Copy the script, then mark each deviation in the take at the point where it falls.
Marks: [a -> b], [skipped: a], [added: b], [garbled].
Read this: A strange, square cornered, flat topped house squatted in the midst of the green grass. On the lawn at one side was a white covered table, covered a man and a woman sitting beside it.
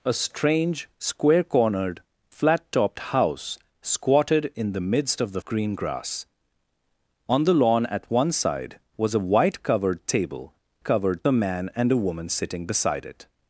A strange, square cornered, flat topped house squatted in the midst of the green grass. On the lawn at one side was a white covered table, covered a man and a woman sitting beside it.